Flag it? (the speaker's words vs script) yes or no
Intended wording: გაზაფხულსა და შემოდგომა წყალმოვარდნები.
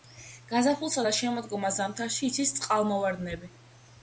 yes